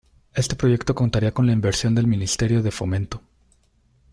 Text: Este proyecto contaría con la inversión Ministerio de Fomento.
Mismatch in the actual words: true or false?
true